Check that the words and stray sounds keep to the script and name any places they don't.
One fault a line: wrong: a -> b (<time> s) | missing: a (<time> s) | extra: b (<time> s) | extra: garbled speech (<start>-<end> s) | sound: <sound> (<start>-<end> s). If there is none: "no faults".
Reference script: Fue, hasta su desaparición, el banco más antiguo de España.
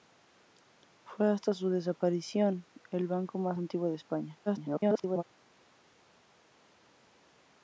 extra: garbled speech (4.5-5.2 s)